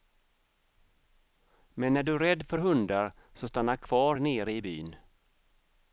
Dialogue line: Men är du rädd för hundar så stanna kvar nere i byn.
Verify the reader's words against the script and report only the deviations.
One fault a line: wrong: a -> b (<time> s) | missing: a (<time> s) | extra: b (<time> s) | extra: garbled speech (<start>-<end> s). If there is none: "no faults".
no faults